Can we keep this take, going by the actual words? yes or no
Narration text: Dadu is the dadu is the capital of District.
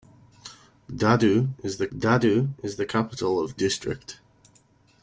yes